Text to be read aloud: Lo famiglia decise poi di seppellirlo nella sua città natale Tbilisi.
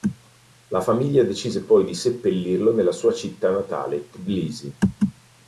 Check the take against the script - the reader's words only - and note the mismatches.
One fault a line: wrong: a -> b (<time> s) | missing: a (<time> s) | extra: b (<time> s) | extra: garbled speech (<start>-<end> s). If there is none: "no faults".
wrong: Lo -> La (0.7 s)